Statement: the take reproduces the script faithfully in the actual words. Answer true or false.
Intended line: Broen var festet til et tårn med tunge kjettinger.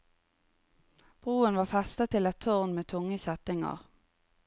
true